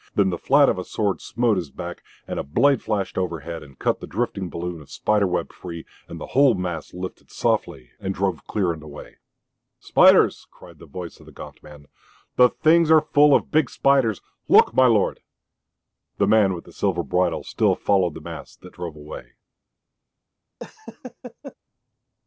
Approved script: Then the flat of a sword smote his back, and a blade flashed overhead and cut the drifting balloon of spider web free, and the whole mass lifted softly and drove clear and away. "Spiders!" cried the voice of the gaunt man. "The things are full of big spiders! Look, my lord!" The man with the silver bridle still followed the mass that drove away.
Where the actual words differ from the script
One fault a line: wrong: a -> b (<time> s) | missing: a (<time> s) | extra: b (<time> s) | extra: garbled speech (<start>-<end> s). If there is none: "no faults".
no faults